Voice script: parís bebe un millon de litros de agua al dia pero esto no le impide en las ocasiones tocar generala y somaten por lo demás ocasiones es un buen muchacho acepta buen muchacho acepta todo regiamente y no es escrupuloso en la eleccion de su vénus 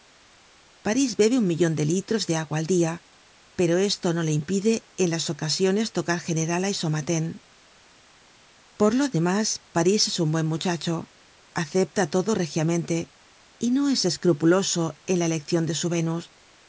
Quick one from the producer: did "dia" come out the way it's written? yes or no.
yes